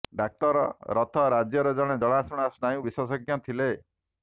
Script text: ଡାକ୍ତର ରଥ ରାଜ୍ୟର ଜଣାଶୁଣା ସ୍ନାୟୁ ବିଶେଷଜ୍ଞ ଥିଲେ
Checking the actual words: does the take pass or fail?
fail